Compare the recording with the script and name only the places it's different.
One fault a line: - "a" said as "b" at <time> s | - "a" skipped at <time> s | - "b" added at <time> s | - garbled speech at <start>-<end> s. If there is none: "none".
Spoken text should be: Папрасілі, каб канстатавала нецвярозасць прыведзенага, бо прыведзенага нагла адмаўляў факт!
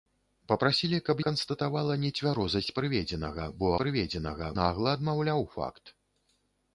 none